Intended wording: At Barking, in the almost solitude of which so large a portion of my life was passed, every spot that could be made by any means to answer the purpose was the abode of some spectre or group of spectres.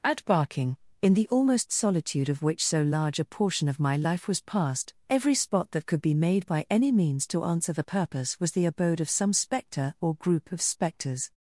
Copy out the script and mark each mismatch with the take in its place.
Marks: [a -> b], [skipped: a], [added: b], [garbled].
At Barking, in the almost solitude of which so large a portion of my life was passed, every spot that could be made by any means to answer the purpose was the abode of some spectre or group of spectres.